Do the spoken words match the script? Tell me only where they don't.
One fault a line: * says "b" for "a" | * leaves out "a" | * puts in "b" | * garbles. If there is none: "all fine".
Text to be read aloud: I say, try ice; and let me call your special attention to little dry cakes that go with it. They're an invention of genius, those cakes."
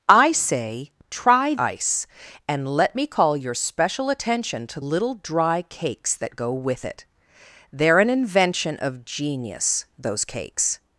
all fine